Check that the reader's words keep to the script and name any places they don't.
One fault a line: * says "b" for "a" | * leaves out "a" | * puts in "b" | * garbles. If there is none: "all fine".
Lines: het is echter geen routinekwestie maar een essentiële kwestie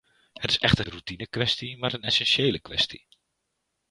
* leaves out "geen"